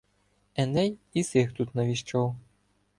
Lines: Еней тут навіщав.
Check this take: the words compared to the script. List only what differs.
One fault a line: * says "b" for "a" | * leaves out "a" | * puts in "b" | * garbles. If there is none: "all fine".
* puts in "і сих"